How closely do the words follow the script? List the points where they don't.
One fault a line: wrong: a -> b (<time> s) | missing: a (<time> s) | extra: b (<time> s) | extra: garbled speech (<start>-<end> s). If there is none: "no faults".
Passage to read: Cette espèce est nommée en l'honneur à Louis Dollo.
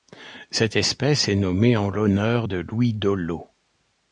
wrong: à -> de (2.4 s)